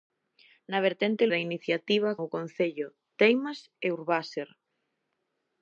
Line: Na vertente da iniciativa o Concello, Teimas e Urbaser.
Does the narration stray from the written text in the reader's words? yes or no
no